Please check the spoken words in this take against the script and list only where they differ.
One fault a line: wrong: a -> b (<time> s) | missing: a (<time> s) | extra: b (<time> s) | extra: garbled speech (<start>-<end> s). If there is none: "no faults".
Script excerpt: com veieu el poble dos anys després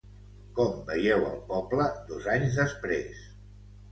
no faults